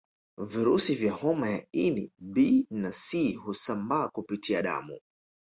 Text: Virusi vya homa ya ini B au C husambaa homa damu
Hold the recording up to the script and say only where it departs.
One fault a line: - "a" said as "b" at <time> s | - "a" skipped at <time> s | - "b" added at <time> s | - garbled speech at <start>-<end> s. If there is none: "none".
- "au" said as "na" at 2.7 s
- "homa" said as "kupitia" at 4.1 s